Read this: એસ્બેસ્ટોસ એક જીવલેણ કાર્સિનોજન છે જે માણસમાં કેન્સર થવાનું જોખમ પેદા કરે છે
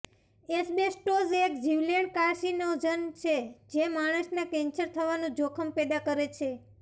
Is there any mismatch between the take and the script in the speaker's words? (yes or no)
no